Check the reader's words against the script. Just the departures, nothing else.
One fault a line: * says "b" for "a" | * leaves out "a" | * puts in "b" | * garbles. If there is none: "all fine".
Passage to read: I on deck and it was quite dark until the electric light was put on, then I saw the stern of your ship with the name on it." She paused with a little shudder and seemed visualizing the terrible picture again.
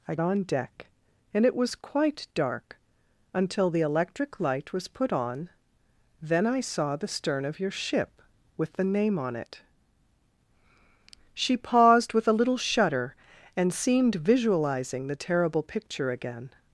all fine